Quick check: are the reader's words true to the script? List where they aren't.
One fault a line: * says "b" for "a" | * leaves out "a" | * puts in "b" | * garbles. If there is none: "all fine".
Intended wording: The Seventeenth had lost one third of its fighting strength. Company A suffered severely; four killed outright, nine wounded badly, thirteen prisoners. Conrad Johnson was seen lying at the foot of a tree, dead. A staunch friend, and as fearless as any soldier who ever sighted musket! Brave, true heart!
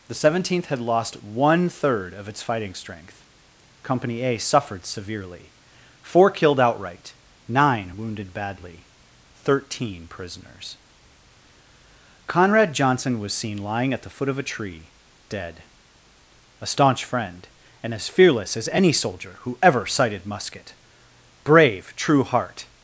all fine